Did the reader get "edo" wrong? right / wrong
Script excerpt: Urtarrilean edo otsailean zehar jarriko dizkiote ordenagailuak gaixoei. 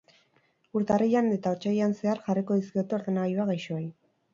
wrong